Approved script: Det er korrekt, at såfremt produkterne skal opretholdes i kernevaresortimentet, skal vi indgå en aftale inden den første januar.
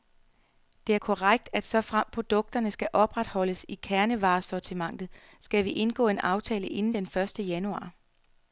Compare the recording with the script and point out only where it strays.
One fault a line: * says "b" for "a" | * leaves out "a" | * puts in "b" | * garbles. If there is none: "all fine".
all fine